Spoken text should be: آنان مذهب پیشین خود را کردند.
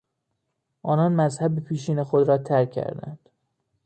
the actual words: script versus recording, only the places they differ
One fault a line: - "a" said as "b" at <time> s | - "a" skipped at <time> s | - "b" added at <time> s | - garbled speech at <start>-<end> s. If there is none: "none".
- "ترک" added at 2.4 s